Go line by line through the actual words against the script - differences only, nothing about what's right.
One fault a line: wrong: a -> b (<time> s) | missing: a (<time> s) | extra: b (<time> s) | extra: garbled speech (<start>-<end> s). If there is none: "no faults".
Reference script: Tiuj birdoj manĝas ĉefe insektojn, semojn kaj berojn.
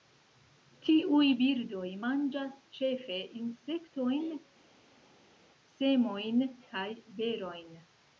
no faults